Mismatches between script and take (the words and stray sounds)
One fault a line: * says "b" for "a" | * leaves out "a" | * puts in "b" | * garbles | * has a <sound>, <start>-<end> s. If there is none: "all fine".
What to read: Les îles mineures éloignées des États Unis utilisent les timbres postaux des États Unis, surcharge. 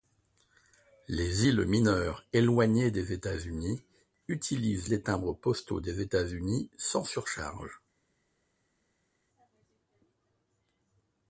* puts in "sans"